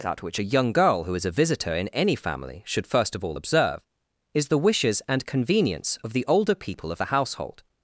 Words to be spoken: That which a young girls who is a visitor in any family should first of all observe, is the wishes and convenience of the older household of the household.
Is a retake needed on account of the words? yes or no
yes